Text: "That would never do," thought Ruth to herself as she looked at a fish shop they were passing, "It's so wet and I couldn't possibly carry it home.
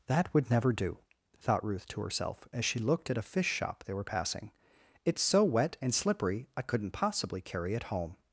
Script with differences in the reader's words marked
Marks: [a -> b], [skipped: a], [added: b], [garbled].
"That would never do," thought Ruth to herself as she looked at a fish shop they were passing, "It's so wet and [added: slippery] I couldn't possibly carry it home.